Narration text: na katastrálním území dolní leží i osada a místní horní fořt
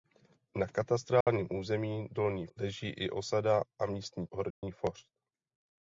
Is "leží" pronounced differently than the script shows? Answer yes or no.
no